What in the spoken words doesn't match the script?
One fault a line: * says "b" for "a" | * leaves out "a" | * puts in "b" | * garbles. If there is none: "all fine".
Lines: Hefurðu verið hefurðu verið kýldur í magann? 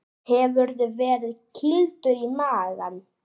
* leaves out "hefurðu verið"